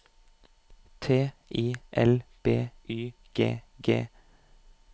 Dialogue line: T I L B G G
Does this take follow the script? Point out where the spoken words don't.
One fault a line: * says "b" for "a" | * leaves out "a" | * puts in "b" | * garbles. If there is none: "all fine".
* puts in "Y"